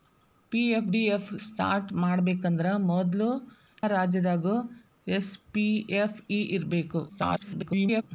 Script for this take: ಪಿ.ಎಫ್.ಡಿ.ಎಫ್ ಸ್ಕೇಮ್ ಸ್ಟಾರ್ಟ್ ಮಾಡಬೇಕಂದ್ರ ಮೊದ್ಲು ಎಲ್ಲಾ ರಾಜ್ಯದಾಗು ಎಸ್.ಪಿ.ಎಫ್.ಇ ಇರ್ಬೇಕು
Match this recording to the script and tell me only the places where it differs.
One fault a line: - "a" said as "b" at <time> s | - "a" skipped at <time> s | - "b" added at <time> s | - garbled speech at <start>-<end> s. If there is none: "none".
- "ಸ್ಕೇಮ್" skipped at 1.3 s
- "ಎಲ್ಲಾ" skipped at 3.3 s
- garbled speech at 7.1-8.0 s